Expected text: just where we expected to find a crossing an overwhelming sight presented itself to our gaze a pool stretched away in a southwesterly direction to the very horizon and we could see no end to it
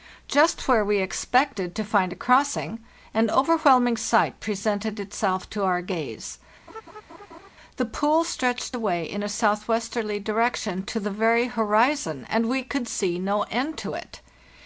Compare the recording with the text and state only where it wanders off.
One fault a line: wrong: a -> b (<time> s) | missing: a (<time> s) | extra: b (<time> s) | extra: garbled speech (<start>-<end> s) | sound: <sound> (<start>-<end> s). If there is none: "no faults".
sound: laugh (6.7-7.5 s)
wrong: a -> the (7.8 s)